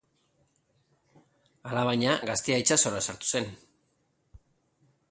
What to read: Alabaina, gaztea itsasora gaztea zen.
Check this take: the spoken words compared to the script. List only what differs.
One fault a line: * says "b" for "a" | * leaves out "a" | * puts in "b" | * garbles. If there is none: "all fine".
* says "sartu" for "gaztea"